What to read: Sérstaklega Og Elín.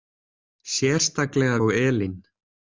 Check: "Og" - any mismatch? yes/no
no